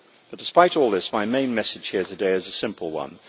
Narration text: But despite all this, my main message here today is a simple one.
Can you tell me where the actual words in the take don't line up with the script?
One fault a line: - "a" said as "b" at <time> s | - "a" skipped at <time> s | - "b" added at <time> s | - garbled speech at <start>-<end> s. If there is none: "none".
none